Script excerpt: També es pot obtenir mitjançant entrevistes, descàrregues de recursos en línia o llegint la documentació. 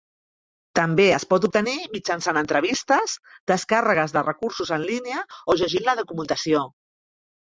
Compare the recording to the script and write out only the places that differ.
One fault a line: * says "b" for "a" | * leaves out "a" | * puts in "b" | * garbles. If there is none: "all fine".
all fine